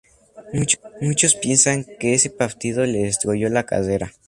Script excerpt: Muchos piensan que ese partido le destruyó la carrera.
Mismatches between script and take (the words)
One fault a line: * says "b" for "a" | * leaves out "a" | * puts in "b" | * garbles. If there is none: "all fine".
all fine